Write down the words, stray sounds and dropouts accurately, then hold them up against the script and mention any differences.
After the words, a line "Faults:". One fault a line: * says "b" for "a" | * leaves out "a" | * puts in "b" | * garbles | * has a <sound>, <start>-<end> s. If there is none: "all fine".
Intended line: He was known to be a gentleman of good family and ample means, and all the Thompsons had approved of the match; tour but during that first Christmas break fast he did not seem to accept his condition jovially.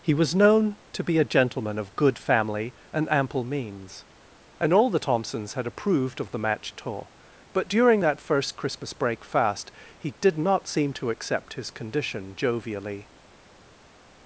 He was known to be a gentleman of good family and ample means, and all the Thompsons had approved of the match; tour but during that first Christmas break fast he did not seem to accept his condition jovially.
Faults:
all fine